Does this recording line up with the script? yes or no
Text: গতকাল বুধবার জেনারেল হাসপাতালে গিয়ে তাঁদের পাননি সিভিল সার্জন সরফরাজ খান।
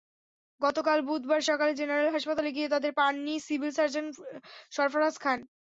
no